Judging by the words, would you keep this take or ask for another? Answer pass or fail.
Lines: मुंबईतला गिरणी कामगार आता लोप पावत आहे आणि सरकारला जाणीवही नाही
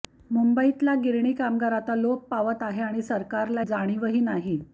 pass